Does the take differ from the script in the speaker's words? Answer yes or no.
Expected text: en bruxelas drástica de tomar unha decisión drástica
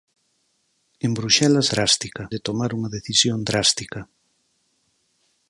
no